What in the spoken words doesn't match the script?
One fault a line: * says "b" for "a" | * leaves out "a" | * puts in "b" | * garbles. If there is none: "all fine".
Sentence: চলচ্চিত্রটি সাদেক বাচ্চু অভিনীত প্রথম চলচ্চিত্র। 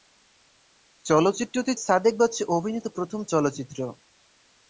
all fine